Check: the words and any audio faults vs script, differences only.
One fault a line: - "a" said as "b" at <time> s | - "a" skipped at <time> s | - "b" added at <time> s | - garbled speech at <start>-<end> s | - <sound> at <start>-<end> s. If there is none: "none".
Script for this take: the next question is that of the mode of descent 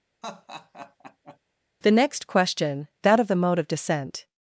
- laugh at 0.2-1.4 s
- "is" skipped at 2.9 s